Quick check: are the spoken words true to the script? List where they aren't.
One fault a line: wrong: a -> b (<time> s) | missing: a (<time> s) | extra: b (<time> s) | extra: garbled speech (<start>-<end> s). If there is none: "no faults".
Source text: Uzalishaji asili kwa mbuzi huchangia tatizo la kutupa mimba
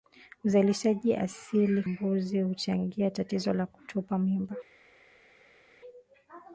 missing: kwa (1.8 s)